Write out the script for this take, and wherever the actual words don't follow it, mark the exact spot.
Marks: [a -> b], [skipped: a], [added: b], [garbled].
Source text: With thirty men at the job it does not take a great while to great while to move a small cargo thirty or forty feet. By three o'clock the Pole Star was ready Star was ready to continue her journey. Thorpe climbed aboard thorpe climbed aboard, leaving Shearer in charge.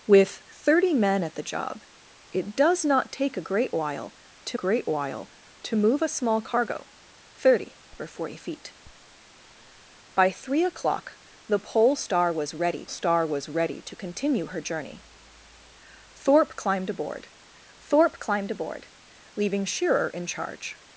With thirty men at the job it does not take a great while to great while to move a small cargo thirty or forty feet. By three o'clock the Pole Star was ready Star was ready to continue her journey. Thorpe climbed aboard thorpe climbed aboard, leaving Shearer in charge.